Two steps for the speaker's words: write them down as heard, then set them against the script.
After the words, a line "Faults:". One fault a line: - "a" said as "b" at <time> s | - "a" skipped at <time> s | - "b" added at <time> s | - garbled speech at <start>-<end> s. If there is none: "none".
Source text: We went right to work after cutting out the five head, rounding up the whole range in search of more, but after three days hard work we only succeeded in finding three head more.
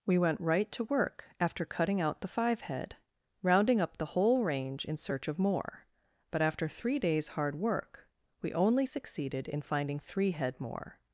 We went right to work after cutting out the five head, rounding up the whole range in search of more, but after three days hard work we only succeeded in finding three head more.
Faults:
none